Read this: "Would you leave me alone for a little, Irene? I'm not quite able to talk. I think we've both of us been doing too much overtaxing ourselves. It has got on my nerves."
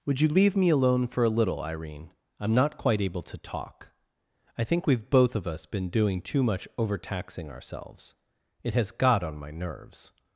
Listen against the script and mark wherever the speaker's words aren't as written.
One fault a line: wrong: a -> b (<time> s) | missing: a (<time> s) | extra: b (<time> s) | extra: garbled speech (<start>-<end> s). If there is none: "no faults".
no faults